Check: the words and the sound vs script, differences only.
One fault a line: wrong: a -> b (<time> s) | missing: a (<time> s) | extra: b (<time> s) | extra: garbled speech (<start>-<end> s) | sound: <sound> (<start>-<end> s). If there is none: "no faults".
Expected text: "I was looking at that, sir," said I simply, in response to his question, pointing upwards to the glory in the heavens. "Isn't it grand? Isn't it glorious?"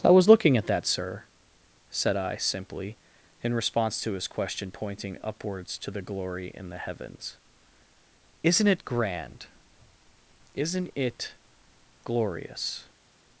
no faults